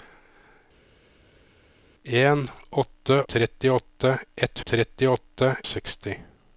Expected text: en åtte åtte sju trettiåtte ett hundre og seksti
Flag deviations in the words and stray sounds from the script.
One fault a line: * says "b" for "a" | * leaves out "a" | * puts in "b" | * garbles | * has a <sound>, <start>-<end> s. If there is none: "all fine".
* leaves out "åtte sju"
* says "trettiåtte" for "hundre"